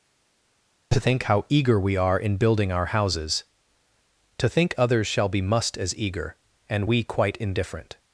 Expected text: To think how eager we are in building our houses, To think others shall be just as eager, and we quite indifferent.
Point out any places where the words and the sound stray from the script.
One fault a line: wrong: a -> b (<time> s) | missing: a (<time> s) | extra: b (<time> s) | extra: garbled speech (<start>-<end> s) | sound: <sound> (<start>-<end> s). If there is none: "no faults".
wrong: just -> must (5.4 s)